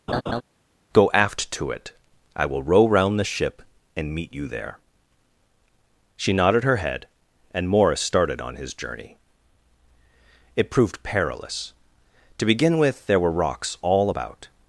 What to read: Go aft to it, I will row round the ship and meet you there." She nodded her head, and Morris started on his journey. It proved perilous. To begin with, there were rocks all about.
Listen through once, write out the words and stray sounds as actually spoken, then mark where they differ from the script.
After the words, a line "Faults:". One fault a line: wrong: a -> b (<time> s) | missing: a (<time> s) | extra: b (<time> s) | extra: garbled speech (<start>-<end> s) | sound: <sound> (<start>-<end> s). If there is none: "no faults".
Go aft to it, I will row round the ship and meet you there." She nodded her head, and Morris started on his journey. It proved perilous. To begin with, there were rocks all about.
Faults:
sound: laugh (0.1-0.4 s)